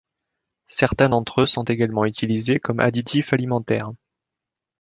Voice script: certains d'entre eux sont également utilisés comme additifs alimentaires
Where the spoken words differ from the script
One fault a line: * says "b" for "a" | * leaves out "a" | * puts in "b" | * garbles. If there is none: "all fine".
all fine